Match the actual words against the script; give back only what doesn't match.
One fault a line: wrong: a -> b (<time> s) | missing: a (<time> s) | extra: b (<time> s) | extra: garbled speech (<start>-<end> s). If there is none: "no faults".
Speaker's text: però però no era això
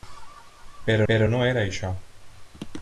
no faults